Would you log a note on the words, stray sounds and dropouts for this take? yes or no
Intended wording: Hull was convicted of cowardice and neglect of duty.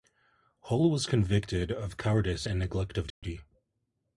yes